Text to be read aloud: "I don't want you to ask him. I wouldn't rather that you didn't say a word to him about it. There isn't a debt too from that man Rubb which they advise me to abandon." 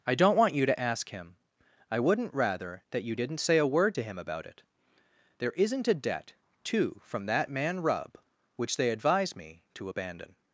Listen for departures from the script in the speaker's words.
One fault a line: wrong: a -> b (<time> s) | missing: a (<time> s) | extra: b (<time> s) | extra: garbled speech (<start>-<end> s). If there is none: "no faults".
no faults